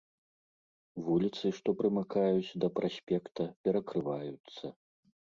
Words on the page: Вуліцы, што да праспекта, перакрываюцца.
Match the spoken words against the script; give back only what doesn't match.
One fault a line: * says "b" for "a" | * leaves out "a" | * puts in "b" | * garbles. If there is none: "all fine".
* puts in "прымыкаюць"